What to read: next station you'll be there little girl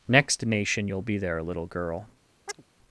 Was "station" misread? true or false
true